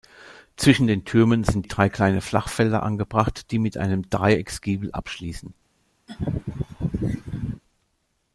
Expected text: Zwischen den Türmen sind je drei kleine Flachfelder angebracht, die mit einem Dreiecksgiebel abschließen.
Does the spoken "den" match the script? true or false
true